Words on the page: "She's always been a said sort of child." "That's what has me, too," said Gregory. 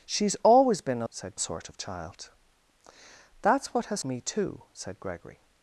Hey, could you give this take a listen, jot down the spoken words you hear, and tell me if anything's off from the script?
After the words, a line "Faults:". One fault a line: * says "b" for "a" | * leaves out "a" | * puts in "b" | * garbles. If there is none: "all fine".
"She's always been a said sort of child." "That's what has me, too," said Gregory.
Faults:
all fine